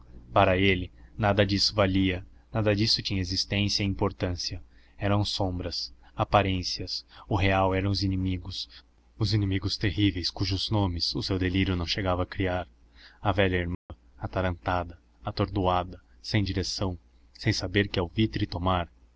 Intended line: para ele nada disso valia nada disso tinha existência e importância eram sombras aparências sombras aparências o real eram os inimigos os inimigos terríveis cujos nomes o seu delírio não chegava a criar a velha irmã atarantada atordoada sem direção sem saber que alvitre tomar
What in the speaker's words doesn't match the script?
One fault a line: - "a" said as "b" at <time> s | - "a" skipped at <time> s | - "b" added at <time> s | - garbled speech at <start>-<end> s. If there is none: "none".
- "sombras aparências" skipped at 7.0 s